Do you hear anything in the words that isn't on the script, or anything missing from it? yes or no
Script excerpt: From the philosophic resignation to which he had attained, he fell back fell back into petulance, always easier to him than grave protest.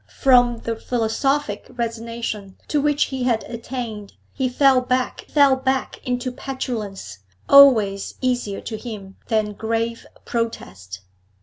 no